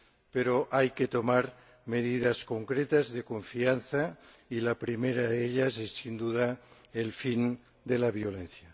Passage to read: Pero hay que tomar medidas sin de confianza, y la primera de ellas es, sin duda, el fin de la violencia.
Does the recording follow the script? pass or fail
fail